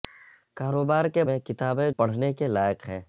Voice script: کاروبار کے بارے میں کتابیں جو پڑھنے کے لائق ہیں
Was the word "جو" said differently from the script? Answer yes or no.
yes